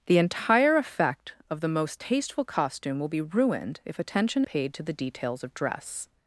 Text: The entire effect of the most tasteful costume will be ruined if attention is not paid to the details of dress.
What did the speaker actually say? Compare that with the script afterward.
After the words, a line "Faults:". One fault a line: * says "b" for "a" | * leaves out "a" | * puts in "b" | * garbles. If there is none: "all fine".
The entire effect of the most tasteful costume will be ruined if attention paid to the details of dress.
Faults:
* leaves out "is not"